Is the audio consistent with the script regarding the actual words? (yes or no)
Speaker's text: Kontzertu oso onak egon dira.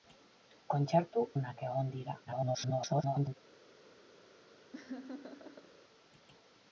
no